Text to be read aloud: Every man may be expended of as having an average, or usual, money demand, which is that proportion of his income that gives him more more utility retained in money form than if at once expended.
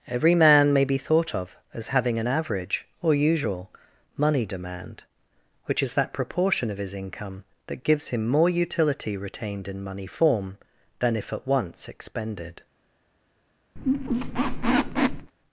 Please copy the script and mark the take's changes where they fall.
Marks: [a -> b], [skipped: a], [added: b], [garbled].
Every man may be [expended -> thought] of as having an average, or usual, money demand, which is that proportion of his income that gives him more [skipped: more] utility retained in money form than if at once expended.